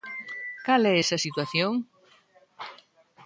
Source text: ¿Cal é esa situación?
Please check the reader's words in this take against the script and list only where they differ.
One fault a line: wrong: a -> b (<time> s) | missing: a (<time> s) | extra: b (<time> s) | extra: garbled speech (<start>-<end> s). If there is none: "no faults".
no faults